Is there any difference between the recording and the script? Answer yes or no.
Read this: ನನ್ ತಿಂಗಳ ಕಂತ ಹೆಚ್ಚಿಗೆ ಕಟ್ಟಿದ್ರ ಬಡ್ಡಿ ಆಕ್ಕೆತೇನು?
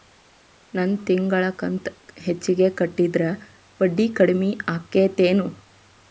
yes